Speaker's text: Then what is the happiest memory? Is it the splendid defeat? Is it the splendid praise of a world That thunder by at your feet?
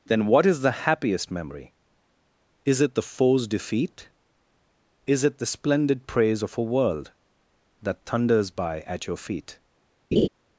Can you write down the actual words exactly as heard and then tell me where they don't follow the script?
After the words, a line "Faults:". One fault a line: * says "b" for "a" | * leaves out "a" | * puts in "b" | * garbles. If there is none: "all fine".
Then what is the happiest memory? Is it the foe's defeat? Is it the splendid praise of a world That thunders by at your feet?
Faults:
* says "foe's" for "splendid"
* says "thunders" for "thunder"